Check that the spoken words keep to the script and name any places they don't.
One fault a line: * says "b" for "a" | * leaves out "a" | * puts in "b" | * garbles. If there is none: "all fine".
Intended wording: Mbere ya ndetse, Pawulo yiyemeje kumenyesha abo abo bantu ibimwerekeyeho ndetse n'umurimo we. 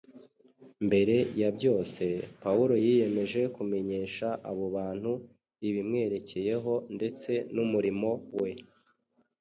* says "byose" for "ndetse"
* leaves out "abo"